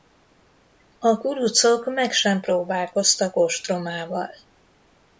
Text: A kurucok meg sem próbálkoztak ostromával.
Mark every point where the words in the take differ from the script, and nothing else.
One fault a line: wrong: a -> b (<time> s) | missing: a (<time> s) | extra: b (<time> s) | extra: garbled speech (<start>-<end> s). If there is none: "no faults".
no faults